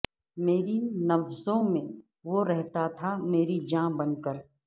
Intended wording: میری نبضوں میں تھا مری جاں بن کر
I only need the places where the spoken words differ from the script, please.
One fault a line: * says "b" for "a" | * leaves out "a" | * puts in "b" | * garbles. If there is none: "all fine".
* puts in "وہ رہتا"